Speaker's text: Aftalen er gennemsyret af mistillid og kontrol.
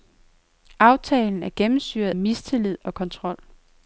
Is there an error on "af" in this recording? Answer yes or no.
yes